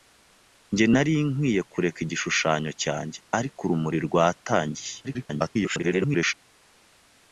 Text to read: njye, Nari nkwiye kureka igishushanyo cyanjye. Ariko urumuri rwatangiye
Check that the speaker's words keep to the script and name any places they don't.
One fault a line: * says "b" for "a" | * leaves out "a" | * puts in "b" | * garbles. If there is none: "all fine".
* garbles